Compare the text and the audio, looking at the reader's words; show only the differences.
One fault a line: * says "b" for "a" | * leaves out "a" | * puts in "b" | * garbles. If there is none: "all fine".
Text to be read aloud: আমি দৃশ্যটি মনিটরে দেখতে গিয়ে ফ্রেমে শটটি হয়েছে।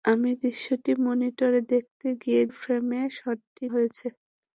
all fine